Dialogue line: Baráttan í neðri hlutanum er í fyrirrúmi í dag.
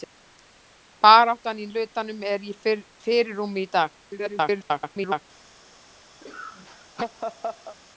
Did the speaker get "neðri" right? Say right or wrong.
wrong